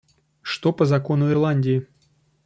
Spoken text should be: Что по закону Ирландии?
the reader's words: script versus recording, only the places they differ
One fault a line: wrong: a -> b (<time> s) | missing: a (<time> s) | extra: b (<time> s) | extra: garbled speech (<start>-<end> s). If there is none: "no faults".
no faults